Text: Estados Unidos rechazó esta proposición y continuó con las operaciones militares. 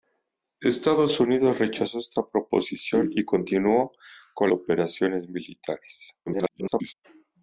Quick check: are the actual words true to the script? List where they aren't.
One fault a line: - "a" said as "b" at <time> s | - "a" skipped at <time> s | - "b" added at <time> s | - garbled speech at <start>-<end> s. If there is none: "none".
- "las" skipped at 4.5 s
- garbled speech at 6.3-6.9 s